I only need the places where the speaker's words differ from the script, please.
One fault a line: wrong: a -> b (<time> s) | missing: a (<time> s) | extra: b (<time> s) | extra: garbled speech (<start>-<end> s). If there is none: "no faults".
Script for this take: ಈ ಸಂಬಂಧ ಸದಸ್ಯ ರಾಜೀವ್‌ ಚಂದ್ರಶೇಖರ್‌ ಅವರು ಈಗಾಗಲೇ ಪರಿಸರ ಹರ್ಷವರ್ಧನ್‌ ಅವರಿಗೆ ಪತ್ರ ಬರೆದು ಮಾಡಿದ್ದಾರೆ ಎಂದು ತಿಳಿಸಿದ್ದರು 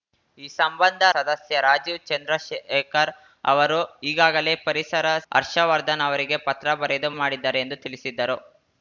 no faults